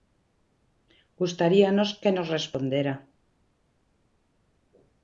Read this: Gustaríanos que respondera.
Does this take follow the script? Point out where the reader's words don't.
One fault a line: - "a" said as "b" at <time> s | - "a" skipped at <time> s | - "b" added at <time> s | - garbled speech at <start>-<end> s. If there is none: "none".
- "nos" added at 2.1 s